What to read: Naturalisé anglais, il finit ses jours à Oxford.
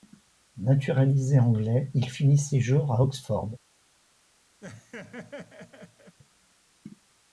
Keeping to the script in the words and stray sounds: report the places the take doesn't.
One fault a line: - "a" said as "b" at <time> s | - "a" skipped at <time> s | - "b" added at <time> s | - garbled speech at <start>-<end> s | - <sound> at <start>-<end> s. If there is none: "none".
- laugh at 4.6-6.2 s